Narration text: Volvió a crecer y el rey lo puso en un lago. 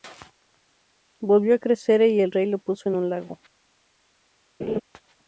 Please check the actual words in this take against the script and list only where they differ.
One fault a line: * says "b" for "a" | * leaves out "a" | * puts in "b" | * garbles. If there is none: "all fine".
all fine